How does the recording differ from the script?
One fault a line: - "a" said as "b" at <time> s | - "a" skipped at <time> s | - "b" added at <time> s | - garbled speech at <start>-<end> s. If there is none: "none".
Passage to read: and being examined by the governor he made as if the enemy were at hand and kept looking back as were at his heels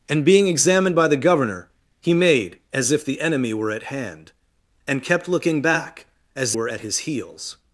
none